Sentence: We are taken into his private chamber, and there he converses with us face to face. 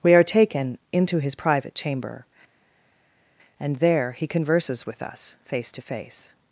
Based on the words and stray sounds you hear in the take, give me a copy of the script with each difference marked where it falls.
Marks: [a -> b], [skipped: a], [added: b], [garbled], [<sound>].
We are taken into his private chamber, and there he converses with us face to face.